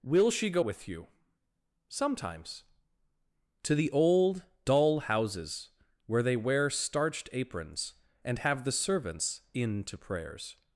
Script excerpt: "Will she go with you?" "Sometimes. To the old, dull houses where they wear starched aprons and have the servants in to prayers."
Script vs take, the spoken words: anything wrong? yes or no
no